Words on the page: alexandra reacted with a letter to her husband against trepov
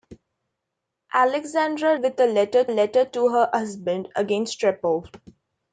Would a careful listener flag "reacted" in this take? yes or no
yes